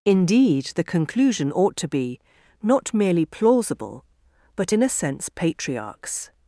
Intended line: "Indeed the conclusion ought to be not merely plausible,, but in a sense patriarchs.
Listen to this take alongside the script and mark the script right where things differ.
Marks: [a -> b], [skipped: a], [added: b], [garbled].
"Indeed the conclusion ought to be not merely plausible,, but in a sense patriarchs.